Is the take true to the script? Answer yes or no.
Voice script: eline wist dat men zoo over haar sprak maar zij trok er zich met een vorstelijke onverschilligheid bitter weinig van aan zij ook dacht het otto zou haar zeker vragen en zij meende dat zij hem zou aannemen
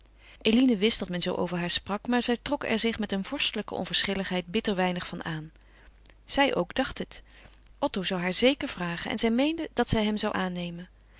yes